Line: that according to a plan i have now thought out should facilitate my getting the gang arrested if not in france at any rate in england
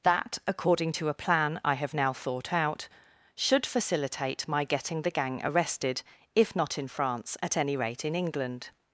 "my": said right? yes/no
yes